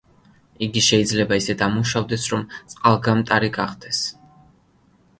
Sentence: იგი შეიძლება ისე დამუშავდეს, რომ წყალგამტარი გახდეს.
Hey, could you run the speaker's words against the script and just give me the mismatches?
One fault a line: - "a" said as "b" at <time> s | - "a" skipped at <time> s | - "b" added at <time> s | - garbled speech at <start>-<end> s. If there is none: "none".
none